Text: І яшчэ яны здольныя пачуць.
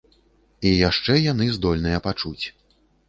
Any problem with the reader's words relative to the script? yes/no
no